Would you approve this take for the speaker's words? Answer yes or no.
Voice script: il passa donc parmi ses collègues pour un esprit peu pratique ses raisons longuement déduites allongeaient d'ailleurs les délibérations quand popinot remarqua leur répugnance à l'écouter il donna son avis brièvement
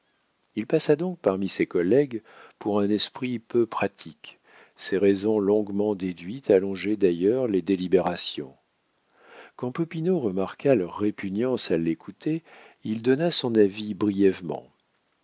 yes